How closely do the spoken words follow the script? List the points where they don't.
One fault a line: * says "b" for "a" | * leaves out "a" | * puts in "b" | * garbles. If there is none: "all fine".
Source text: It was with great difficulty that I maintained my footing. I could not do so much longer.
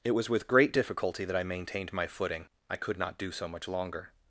all fine